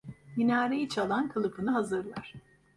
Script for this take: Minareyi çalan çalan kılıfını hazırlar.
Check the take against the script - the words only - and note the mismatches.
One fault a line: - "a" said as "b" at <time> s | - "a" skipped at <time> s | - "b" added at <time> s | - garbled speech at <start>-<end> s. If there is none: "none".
- "çalan" skipped at 1.3 s